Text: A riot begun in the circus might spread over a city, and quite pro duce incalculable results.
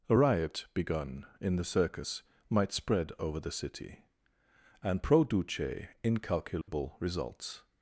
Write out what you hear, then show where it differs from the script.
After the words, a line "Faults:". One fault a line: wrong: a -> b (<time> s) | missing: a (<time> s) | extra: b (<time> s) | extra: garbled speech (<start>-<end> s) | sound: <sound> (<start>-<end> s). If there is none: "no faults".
A riot begun in the circus might spread over the city, and pro duce incalculable results.
Faults:
wrong: a -> the (3.4 s)
missing: quite (5.0 s)
sound: dropout (6.6-6.7 s)